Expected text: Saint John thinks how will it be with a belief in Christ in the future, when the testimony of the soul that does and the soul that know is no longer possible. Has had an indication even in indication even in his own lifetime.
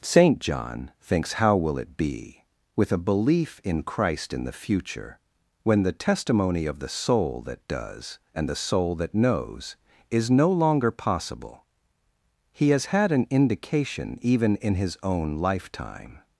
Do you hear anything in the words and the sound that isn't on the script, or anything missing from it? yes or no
yes